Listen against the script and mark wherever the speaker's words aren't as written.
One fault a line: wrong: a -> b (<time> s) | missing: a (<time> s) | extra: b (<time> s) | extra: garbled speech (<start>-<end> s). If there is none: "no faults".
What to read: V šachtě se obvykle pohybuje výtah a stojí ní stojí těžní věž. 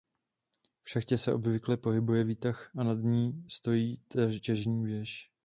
wrong: stojí -> nad (2.8 s)